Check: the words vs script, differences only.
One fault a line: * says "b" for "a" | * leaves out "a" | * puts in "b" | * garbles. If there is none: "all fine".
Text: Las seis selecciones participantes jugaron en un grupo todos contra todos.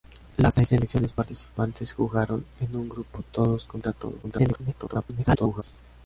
* garbles